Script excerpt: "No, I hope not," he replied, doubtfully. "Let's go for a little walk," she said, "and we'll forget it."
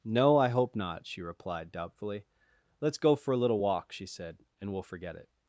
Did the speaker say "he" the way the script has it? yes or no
no